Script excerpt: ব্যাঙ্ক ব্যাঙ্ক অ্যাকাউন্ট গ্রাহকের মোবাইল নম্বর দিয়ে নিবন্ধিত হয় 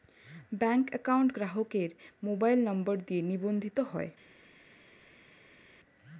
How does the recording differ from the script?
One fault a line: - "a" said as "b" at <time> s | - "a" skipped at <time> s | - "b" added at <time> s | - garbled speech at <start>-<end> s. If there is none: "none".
- "ব্যাঙ্ক" skipped at 0.8 s